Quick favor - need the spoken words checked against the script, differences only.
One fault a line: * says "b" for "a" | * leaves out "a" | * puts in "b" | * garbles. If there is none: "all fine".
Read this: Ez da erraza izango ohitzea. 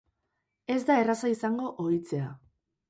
all fine